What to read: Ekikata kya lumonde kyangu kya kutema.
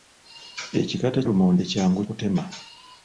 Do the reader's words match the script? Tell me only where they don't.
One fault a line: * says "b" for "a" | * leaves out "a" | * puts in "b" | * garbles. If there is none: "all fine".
* leaves out "kya"
* leaves out "kya"